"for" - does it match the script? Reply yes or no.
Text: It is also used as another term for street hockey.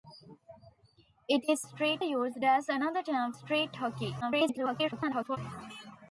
no